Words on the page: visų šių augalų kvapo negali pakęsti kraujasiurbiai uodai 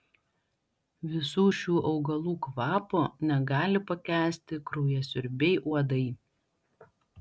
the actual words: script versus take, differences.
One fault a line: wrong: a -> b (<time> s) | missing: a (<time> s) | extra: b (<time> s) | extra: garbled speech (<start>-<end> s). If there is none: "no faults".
no faults